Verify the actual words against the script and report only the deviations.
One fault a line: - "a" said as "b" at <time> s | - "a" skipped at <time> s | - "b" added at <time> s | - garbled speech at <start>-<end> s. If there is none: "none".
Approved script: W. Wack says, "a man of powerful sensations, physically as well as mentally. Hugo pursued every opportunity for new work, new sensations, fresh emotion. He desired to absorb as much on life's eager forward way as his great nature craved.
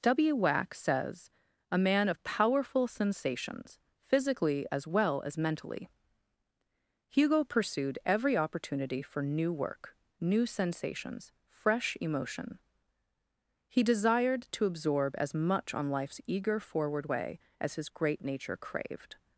none